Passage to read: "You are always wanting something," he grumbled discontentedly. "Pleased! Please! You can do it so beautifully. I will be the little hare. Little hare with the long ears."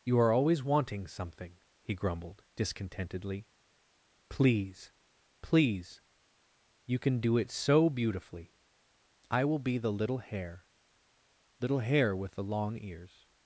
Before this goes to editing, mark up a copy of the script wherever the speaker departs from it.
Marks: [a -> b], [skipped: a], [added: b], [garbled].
"You are always wanting something," he grumbled discontentedly. ["Pleased! -> Please] Please! You can do it so beautifully. I will be the little hare. Little hare with the long ears."